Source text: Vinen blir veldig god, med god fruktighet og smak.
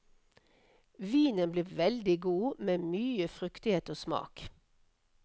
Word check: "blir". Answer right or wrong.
right